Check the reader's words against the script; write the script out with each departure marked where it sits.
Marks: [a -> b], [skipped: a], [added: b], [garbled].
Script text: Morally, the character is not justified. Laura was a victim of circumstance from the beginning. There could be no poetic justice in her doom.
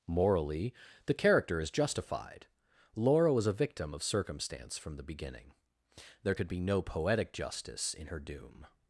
Morally, the character is [skipped: not] justified. Laura was a victim of circumstance from the beginning. There could be no poetic justice in her doom.